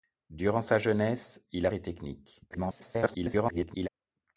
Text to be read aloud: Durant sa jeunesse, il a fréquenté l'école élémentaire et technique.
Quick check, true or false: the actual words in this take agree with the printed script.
false